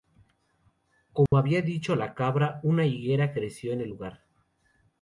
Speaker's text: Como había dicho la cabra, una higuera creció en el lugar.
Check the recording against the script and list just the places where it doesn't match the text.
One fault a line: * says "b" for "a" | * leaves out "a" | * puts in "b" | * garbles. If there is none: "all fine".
all fine